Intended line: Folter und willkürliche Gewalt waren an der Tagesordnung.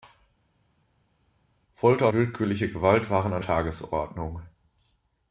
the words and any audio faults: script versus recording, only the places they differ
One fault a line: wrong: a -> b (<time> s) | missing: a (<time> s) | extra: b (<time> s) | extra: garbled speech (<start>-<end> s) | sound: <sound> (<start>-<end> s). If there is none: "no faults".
missing: und (2.1 s)
missing: der (3.4 s)